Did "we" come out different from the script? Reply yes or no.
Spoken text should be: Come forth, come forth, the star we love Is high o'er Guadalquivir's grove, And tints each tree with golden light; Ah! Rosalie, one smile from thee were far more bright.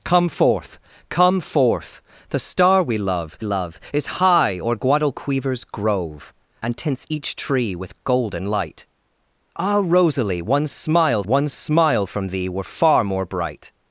no